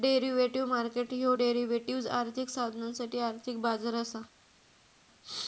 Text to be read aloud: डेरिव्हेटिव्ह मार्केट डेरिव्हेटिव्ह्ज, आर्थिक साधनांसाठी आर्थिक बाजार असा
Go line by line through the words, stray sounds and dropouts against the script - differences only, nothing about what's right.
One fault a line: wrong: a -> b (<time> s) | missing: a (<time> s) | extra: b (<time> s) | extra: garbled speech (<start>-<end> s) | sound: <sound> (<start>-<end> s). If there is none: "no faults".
extra: ह्यो (1.1 s)